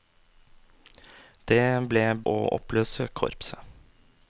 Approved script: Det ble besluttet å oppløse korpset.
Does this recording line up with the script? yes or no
no